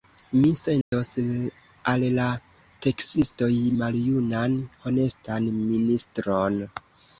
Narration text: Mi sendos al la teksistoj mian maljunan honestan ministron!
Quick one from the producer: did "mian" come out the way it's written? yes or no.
no